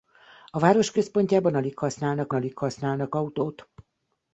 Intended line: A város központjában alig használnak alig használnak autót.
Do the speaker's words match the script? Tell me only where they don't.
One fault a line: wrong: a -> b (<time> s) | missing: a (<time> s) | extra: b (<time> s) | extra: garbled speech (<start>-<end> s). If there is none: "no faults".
no faults